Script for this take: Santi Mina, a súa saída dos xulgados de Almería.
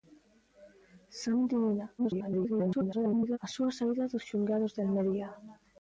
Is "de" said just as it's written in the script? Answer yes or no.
yes